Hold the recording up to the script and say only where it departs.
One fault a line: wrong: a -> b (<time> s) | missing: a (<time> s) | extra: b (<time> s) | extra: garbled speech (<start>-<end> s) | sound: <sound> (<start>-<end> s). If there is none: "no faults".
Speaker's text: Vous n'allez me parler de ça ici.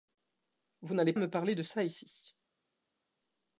no faults